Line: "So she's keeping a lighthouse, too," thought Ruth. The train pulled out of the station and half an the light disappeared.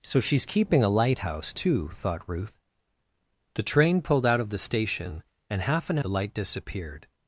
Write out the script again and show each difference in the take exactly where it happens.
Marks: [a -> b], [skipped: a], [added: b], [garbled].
"So she's keeping a lighthouse, too," thought Ruth. The train pulled out of the station and half an the light disappeared.